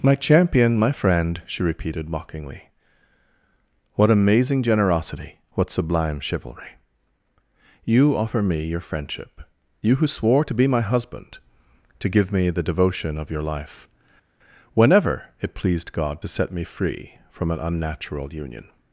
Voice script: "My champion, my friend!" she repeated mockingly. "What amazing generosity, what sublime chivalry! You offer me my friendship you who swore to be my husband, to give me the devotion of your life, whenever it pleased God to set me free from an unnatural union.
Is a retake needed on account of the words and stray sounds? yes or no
yes